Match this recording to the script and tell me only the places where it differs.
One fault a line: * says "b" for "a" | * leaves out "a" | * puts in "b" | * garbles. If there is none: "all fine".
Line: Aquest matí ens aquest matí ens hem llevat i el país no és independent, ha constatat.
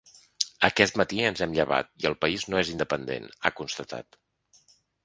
* leaves out "aquest matí ens"